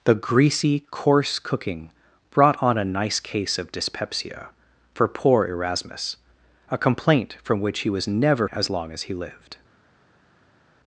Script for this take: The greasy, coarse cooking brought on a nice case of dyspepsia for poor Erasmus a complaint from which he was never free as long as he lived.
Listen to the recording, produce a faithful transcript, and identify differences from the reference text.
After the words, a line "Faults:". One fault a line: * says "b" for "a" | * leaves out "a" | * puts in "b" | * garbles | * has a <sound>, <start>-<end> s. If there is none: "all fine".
The greasy, coarse cooking brought on a nice case of dyspepsia for poor Erasmus a complaint from which he was never as long as he lived.
Faults:
* leaves out "free"